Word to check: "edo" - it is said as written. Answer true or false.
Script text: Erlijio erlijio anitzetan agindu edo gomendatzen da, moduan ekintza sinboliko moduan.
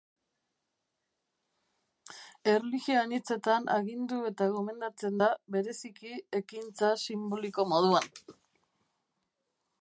false